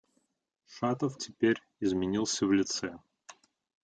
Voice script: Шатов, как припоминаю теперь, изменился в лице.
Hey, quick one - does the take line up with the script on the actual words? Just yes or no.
no